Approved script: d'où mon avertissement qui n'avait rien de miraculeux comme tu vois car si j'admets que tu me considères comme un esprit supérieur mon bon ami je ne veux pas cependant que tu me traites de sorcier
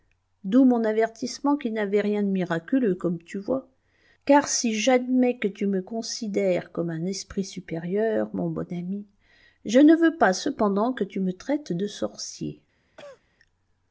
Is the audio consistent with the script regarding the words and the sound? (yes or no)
no